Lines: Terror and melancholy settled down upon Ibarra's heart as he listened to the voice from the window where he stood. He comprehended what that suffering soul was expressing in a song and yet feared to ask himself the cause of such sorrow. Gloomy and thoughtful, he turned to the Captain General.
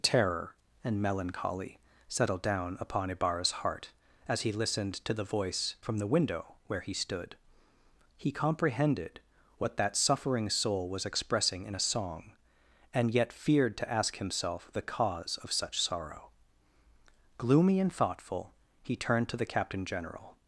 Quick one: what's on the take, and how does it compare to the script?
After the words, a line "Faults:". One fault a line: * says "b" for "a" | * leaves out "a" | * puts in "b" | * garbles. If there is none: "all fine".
Terror and melancholy settled down upon Ibarra's heart as he listened to the voice from the window where he stood. He comprehended what that suffering soul was expressing in a song and yet feared to ask himself the cause of such sorrow. Gloomy and thoughtful, he turned to the Captain General.
Faults:
all fine